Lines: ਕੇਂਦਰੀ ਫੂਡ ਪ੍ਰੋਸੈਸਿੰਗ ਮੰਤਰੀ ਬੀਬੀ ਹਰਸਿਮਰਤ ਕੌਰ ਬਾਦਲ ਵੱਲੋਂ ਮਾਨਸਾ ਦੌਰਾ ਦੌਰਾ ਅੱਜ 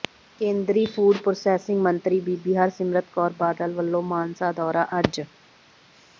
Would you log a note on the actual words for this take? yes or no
yes